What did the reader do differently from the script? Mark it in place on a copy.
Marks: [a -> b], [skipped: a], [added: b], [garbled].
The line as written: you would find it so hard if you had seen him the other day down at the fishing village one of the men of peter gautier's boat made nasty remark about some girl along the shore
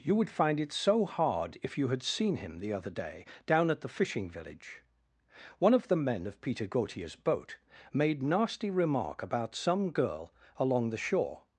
you would find it so hard if you had seen him the other day down at the fishing village one of the men of peter gautier's boat made nasty remark about some girl along the shore